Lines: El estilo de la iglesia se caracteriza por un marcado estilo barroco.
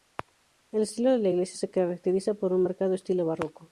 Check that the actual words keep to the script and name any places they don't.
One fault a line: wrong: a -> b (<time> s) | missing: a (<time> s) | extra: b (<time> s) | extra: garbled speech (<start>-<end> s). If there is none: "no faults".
no faults